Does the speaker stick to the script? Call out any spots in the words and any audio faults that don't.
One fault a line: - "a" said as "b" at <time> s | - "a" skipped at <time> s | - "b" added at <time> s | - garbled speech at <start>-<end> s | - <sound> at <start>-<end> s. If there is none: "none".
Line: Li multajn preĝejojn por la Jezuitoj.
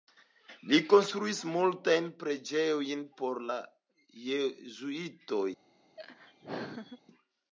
- "konstruis" added at 0.9 s
- laugh at 6.0-7.0 s